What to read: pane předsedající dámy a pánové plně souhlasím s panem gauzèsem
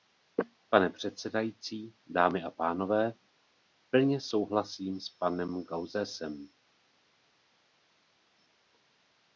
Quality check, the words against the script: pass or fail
pass